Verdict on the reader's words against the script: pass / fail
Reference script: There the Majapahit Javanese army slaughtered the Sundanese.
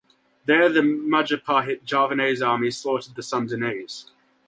pass